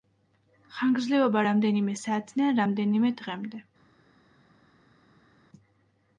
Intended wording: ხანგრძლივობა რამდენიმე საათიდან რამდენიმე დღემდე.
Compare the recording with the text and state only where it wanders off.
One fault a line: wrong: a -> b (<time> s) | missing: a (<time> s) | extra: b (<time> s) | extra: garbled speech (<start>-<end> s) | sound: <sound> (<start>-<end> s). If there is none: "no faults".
no faults